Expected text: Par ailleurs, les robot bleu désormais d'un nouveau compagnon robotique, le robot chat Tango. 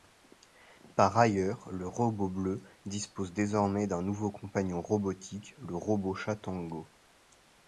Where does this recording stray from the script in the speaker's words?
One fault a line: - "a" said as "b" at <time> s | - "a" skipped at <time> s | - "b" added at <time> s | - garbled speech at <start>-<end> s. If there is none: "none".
- "les" said as "le" at 1.7 s
- "dispose" added at 2.8 s